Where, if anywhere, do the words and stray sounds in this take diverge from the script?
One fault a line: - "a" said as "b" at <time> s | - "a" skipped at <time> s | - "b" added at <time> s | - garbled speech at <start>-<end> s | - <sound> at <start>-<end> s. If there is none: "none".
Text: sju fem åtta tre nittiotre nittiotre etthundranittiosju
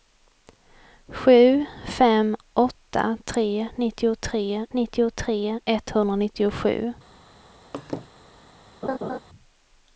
- laugh at 7.7-8.1 s
- laugh at 8.8-9.2 s